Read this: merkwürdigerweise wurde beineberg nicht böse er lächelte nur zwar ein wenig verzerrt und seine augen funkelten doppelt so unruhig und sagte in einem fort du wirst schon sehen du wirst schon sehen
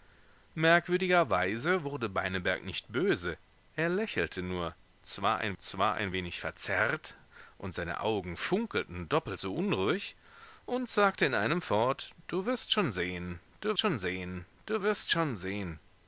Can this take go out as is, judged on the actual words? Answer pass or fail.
fail